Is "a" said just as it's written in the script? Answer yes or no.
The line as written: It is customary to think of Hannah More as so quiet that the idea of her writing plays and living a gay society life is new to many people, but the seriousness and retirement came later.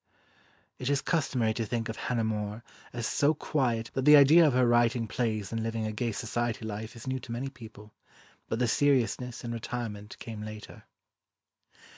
yes